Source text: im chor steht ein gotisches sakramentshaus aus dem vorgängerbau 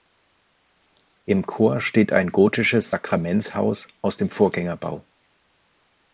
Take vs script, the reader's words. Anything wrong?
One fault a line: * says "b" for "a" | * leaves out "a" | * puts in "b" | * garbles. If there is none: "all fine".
all fine